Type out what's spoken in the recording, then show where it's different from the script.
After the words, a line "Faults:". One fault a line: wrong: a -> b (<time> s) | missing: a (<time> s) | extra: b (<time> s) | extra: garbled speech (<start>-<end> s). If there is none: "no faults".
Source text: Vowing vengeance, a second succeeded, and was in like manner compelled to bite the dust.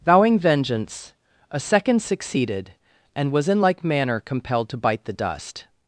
Vowing vengeance, a second succeeded, and was in like manner compelled to bite the dust.
Faults:
no faults